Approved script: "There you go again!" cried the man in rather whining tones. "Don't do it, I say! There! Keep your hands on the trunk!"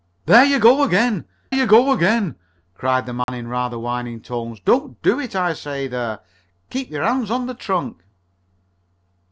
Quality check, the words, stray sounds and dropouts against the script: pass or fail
fail